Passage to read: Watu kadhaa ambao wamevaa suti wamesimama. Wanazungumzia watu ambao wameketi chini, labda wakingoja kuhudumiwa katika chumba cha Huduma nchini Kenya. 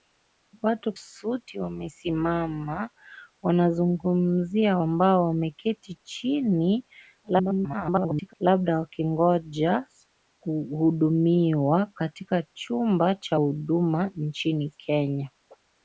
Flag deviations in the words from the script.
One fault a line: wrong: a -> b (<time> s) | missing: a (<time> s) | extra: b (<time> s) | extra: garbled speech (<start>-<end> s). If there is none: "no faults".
missing: kadhaa ambao wamevaa (0.9 s)
missing: watu (4.8 s)
extra: garbled speech (7.2-8.3 s)